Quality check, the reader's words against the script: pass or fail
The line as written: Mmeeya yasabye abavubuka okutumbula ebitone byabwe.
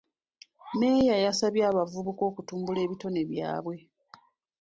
pass